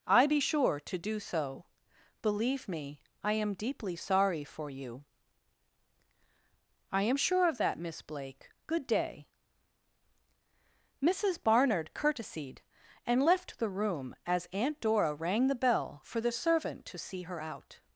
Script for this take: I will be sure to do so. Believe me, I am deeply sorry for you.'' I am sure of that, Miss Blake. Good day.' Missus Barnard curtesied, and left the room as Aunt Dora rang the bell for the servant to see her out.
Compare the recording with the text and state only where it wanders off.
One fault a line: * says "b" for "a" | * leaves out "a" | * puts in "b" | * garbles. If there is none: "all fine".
* leaves out "will"